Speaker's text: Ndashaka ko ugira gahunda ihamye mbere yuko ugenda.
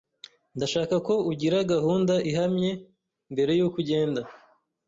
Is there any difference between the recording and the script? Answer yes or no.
no